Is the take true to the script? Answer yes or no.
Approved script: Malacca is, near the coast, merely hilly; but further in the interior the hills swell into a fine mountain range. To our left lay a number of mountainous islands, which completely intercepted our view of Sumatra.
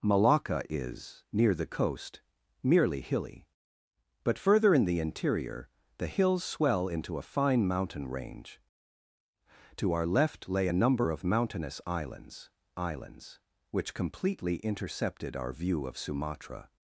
no